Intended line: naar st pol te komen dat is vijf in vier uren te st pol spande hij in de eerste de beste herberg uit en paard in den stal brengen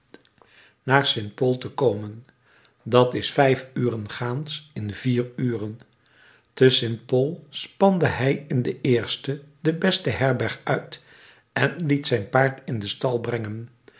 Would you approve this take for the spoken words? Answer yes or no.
no